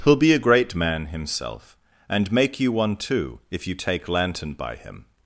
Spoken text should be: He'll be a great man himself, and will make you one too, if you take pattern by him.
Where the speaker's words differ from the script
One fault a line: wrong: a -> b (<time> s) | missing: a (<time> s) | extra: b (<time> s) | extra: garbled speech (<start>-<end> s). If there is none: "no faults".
missing: will (2.3 s)
wrong: pattern -> lantern (4.1 s)